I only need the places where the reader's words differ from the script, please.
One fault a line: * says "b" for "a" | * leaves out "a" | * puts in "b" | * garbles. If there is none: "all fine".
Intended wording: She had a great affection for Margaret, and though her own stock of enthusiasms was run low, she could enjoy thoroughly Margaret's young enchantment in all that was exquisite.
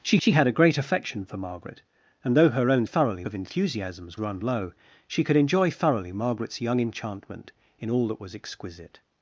* puts in "she"
* says "thoroughly" for "stock"
* leaves out "was"